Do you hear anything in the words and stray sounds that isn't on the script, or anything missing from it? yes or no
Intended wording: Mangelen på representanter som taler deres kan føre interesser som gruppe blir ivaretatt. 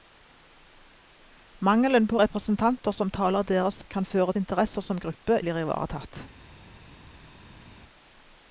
no